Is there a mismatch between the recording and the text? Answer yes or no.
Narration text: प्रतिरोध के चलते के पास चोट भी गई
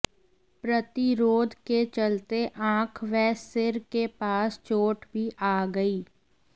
yes